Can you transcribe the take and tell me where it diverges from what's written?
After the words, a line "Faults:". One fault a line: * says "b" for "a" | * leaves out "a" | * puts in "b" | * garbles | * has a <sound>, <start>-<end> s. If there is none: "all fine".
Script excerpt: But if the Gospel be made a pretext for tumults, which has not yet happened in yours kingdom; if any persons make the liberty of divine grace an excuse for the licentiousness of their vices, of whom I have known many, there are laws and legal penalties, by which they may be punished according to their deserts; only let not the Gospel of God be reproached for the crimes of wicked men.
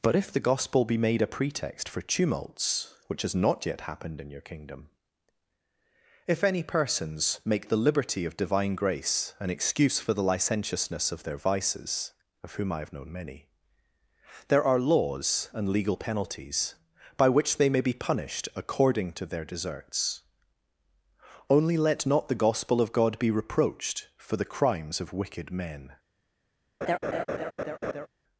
But if the Gospel be made a pretext for tumults, which has not yet happened in your kingdom; if any persons make the liberty of divine grace an excuse for the licentiousness of their vices, of whom I have known many, there are laws and legal penalties, by which they may be punished according to their deserts; only let not the Gospel of God be reproached for the crimes of wicked men.
Faults:
* says "your" for "yours"
* has a laugh, 26.8-28.1 s